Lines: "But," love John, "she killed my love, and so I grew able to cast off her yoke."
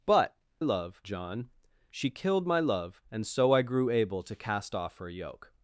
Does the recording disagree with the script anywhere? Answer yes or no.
no